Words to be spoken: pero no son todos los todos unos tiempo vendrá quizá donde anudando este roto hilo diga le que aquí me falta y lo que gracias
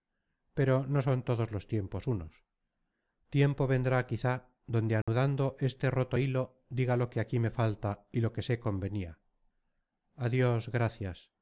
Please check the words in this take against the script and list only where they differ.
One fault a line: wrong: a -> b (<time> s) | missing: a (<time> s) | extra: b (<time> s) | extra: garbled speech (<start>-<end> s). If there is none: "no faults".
wrong: todos -> tiempos (1.7 s)
wrong: le -> lo (7.0 s)
extra: sé convenia adios (8.4 s)